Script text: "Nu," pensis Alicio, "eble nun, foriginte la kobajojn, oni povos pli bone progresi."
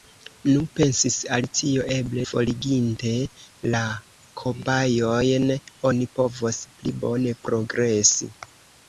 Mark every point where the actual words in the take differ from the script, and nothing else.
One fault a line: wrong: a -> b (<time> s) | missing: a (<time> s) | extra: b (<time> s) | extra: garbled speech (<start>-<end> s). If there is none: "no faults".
missing: nun (2.2 s)